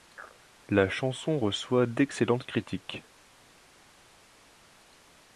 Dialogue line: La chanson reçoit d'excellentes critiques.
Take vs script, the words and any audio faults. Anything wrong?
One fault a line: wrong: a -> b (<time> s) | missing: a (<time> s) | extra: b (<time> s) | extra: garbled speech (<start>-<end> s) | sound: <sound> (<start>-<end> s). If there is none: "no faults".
no faults